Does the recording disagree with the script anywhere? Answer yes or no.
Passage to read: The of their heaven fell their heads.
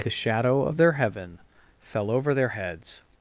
yes